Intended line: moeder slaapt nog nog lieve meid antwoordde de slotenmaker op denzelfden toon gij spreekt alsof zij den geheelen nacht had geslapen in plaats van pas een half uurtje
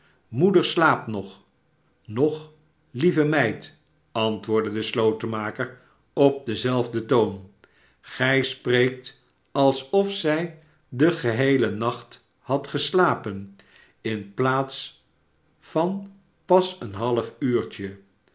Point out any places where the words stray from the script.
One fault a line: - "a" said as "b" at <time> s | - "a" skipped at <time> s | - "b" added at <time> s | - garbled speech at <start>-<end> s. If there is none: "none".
none